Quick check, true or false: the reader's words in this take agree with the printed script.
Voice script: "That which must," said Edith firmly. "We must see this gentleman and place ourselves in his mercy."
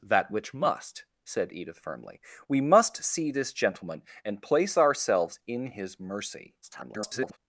false